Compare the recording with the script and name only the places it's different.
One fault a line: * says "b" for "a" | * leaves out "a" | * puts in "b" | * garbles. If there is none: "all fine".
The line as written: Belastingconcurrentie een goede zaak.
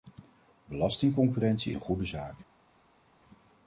all fine